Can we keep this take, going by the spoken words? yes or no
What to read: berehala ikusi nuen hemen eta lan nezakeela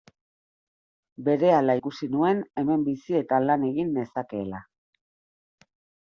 no